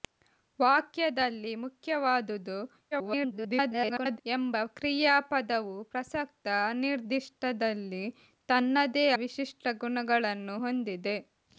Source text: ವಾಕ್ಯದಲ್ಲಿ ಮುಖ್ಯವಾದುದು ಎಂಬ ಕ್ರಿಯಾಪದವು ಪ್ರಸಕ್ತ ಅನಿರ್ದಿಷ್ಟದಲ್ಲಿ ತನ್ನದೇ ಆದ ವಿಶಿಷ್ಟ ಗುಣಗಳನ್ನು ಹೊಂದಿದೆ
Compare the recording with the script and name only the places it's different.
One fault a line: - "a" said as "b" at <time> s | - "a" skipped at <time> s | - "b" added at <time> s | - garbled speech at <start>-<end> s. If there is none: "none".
- garbled speech at 2.9-4.2 s
- "ಆದ" skipped at 9.1 s